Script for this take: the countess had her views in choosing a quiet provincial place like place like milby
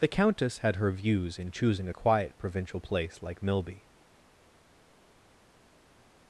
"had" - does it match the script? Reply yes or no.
yes